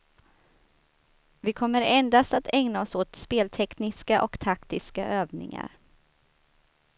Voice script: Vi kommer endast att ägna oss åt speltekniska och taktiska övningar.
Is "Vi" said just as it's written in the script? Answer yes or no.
yes